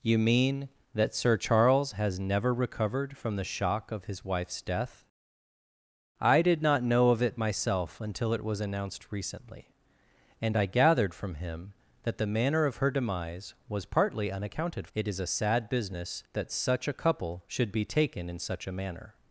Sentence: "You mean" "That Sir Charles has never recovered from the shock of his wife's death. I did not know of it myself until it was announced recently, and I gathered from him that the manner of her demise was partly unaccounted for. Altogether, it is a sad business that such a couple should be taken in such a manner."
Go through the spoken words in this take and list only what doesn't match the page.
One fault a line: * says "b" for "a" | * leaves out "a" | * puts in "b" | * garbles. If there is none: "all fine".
* leaves out "for Altogether"